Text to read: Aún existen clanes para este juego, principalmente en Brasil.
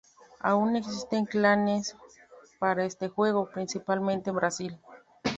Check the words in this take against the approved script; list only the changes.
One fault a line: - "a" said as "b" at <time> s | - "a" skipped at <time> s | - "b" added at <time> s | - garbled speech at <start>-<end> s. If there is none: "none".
none